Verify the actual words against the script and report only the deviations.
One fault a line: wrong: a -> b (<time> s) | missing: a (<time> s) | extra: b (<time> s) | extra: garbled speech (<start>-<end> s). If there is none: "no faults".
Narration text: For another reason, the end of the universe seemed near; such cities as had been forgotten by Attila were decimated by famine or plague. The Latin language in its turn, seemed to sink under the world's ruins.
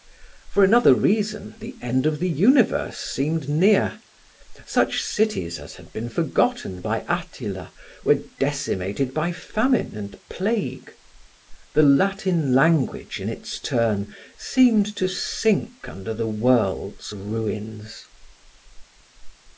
wrong: or -> and (9.9 s)